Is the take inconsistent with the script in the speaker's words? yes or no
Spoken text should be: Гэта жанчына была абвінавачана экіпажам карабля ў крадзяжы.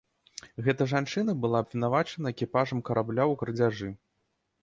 no